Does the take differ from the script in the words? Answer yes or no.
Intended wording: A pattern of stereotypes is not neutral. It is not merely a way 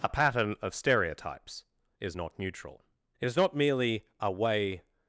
no